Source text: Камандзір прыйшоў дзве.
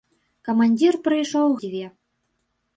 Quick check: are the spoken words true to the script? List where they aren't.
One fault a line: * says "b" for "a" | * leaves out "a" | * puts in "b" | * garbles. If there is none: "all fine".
all fine